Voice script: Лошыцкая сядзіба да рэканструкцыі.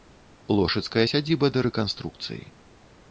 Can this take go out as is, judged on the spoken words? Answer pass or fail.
pass